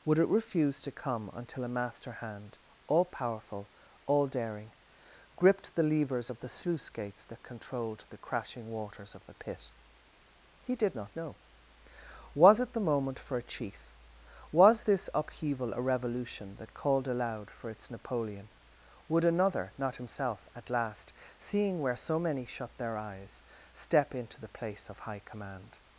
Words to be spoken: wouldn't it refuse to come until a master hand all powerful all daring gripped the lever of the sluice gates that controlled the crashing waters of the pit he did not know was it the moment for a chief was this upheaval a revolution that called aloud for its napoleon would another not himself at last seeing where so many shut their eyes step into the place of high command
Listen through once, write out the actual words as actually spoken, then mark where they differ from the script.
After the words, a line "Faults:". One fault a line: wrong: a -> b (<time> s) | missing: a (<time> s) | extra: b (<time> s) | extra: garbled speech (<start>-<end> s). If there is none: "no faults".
would it refuse to come until a master hand all powerful all daring gripped the levers of the sluice gates that controlled the crashing waters of the pit he did not know was it the moment for a chief was this upheaval a revolution that called aloud for its napoleon would another not himself at last seeing where so many shut their eyes step into the place of high command
Faults:
wrong: wouldn't -> would (0.0 s)
wrong: lever -> levers (5.8 s)